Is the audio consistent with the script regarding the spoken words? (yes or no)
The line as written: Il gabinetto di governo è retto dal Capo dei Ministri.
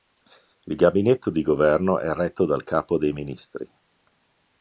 yes